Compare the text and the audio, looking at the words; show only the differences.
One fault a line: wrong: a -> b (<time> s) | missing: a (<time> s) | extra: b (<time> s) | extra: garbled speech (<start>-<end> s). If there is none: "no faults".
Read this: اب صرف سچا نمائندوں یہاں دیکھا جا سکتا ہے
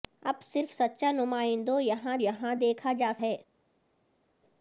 extra: یہاں (2.2 s)
missing: سکتا (3.1 s)